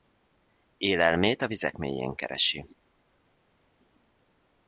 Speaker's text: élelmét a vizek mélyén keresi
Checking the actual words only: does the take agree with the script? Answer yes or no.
yes